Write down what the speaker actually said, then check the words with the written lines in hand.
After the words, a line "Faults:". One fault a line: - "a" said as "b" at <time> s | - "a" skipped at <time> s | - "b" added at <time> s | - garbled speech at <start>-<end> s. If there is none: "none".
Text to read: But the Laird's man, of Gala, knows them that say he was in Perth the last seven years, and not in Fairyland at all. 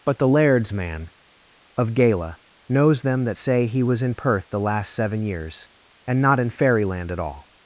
But the Laird's man, of Gala, knows them that say he was in Perth the last seven years, and not in Fairyland at all.
Faults:
none